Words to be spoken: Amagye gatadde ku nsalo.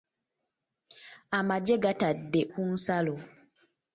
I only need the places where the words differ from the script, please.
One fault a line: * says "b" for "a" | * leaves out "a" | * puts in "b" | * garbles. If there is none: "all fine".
all fine